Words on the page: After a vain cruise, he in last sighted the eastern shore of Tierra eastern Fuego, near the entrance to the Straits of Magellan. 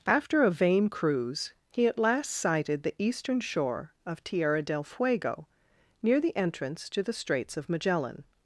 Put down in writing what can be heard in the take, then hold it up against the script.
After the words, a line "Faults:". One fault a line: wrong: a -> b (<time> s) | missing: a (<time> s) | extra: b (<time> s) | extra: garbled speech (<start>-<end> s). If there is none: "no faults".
After a vain cruise, he at last sighted the eastern shore of Tierra del Fuego, near the entrance to the Straits of Magellan.
Faults:
wrong: in -> at (1.9 s)
wrong: eastern -> del (4.6 s)